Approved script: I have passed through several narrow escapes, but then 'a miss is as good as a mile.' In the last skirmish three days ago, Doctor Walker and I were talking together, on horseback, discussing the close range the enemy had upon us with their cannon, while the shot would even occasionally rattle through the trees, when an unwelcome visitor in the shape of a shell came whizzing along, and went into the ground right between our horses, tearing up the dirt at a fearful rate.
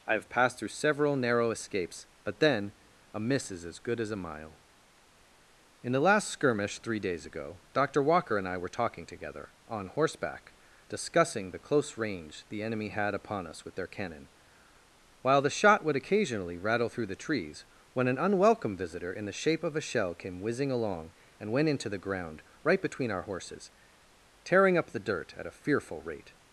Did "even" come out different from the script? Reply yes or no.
yes